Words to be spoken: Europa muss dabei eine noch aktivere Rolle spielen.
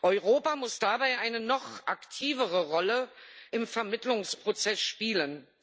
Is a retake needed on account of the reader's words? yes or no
yes